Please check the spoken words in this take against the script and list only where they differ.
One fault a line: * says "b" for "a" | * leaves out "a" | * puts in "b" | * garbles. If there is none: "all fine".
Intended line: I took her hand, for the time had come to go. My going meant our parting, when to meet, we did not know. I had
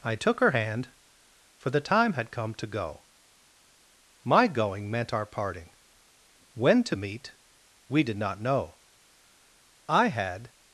all fine